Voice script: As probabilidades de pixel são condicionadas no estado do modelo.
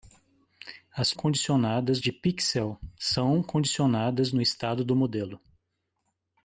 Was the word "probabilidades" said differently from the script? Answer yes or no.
yes